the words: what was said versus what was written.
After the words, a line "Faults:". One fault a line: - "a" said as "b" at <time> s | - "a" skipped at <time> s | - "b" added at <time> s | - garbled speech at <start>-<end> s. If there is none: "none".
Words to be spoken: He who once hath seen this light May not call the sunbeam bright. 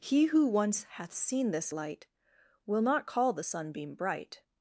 He who once hath seen this light Will not call the sunbeam bright.
Faults:
- "May" said as "Will" at 2.7 s